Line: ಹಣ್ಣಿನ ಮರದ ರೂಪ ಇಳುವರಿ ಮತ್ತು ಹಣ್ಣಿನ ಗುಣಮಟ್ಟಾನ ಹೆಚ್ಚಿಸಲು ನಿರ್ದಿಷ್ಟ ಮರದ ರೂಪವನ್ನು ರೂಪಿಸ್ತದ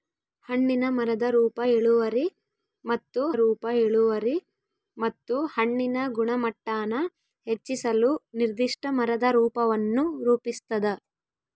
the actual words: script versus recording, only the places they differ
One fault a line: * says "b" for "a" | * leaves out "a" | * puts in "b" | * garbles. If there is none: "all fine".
* puts in "ರೂಪ ಇಳುವರಿ ಮತ್ತು"